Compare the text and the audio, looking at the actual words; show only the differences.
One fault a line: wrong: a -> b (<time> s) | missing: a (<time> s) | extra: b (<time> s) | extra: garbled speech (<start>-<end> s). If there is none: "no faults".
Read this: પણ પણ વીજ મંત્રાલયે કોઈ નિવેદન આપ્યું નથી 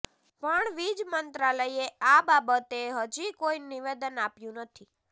missing: પણ (0.7 s)
extra: આ બાબતે હજી (2.1 s)